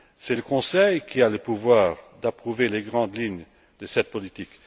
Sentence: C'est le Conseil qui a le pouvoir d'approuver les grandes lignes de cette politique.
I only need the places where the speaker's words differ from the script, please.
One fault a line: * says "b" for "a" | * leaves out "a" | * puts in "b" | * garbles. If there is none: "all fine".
all fine